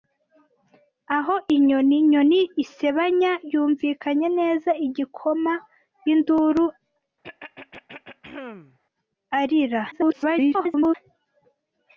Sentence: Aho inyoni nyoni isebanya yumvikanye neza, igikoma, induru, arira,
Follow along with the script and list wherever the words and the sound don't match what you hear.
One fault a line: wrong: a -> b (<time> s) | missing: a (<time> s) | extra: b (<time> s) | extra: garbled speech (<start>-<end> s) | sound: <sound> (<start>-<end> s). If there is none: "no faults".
sound: throat clearing (7.2-8.8 s)
extra: garbled speech (9.9-10.9 s)